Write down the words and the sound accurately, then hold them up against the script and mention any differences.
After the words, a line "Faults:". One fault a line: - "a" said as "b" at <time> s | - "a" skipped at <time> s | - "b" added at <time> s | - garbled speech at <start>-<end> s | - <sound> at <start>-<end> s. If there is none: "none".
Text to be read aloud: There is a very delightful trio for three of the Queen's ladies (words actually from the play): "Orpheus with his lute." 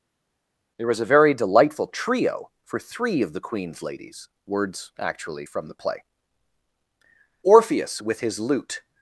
There was a very delightful trio for three of the Queen's ladies (words actually from the play): "Orpheus with his lute."
Faults:
- "is" said as "was" at 0.9 s